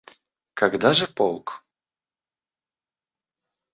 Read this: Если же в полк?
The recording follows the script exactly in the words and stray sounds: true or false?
false